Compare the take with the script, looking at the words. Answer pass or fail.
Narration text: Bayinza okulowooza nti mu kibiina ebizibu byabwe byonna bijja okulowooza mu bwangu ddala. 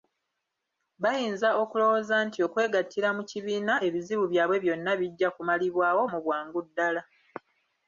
fail